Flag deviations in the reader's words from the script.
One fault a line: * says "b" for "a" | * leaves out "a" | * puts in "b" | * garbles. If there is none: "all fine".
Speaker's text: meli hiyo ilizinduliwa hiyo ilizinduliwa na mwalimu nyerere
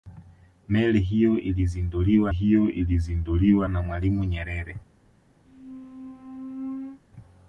all fine